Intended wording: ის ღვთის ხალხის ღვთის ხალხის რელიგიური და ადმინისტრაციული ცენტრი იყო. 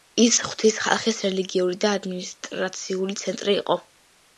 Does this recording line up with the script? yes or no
no